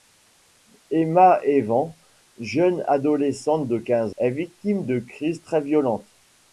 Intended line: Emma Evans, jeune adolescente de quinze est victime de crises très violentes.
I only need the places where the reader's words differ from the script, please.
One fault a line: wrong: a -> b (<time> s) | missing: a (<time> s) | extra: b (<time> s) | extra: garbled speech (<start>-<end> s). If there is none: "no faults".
no faults